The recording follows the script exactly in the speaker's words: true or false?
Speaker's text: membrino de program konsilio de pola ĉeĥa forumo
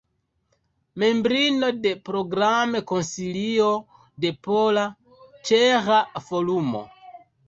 true